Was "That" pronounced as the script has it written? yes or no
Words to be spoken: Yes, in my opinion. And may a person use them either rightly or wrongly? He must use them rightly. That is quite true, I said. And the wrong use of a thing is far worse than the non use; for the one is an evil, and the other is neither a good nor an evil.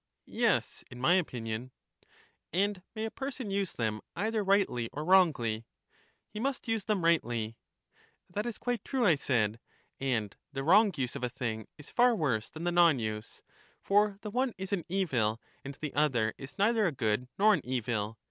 yes